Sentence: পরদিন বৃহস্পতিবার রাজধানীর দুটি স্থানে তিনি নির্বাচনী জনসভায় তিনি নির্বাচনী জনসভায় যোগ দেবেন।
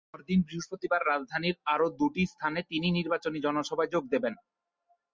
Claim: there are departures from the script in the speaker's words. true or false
true